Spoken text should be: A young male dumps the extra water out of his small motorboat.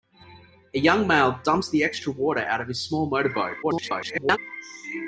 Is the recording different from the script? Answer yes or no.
yes